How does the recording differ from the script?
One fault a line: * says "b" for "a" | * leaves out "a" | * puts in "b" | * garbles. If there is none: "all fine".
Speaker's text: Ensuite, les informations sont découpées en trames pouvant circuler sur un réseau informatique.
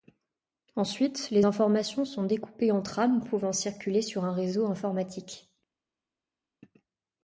all fine